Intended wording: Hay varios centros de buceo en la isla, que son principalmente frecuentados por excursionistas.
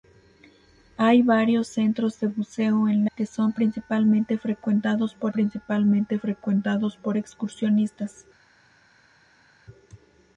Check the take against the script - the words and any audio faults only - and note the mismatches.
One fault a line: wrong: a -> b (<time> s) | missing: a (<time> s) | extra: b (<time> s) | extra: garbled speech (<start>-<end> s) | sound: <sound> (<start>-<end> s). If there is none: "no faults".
wrong: la isla que son -> que son principalmente frecuentados por (3.1 s)